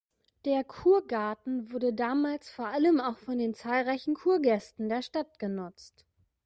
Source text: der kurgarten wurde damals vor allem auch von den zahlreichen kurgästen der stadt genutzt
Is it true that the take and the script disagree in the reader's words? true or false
false